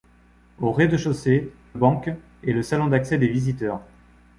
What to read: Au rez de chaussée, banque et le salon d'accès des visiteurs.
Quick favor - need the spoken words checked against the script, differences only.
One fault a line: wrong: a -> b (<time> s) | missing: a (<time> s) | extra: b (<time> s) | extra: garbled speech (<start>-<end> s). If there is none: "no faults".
no faults